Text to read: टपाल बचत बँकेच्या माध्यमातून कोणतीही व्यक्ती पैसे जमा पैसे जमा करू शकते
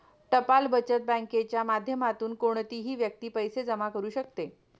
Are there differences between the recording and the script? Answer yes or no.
yes